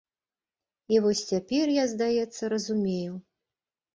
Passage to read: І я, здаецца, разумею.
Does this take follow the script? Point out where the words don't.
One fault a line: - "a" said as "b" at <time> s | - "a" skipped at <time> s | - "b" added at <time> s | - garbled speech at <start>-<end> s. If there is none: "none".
- "вось цяпер" added at 1.0 s